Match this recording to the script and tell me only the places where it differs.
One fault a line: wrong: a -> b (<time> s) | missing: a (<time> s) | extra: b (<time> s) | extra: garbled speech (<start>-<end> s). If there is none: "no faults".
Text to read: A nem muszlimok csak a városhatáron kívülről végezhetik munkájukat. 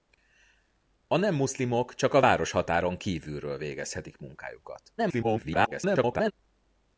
extra: garbled speech (5.0-6.3 s)